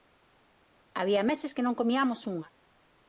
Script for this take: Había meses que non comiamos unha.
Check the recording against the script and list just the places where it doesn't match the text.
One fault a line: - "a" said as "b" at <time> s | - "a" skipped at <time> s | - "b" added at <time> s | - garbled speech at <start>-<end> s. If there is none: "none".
none